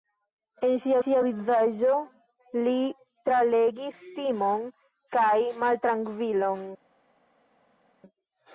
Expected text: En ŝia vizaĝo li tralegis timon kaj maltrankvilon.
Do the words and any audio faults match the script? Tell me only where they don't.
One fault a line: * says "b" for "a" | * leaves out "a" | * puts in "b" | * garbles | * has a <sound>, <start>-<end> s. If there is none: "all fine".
* puts in "ŝia"